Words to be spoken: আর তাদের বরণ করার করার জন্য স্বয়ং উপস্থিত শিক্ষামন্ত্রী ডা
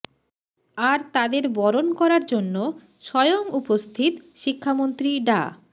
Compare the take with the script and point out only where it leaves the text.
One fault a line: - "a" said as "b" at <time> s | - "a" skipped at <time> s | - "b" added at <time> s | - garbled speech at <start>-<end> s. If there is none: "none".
- "করার" skipped at 2.2 s